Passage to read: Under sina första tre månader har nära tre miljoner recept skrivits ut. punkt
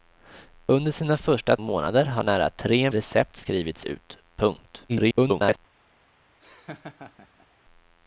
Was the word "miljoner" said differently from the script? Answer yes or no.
yes